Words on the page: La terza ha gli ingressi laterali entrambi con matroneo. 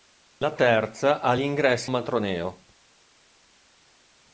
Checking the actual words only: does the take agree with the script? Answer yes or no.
no